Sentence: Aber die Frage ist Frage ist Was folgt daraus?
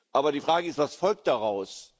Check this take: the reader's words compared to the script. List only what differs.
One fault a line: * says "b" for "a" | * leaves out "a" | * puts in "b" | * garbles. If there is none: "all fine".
* leaves out "Frage ist"